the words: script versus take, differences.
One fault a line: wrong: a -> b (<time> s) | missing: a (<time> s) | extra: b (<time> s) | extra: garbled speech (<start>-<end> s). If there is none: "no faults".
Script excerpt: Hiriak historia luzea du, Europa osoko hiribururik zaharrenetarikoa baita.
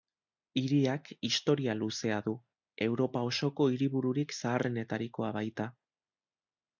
no faults